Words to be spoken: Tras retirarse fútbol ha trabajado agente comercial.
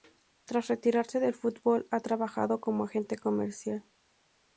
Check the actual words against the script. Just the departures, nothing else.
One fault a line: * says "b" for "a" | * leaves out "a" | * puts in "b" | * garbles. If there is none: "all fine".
* puts in "del"
* puts in "como"